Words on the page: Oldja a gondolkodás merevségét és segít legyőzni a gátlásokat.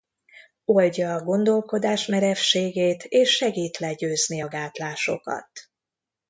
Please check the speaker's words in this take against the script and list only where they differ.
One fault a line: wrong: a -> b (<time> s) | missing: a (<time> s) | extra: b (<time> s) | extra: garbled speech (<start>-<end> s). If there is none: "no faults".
no faults